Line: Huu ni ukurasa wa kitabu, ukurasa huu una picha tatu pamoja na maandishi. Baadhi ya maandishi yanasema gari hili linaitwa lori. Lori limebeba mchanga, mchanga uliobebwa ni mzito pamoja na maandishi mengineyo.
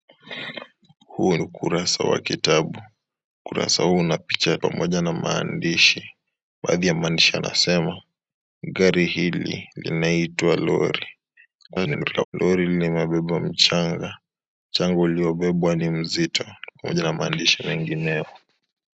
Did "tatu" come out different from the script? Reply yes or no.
yes